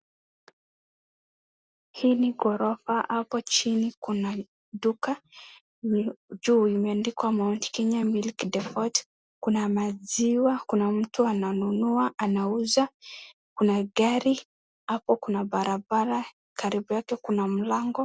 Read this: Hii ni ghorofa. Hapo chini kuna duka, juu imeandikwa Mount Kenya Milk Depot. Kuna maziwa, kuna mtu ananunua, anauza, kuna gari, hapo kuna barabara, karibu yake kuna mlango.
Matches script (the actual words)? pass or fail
pass